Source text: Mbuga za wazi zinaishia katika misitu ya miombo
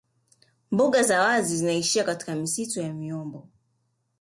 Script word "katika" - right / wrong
right